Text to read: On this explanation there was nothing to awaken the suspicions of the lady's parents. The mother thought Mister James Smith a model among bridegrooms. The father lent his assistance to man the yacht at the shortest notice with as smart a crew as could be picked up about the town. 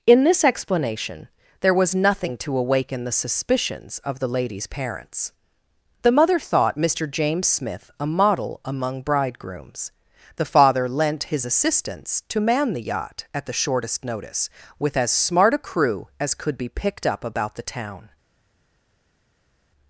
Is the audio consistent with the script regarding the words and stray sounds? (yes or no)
no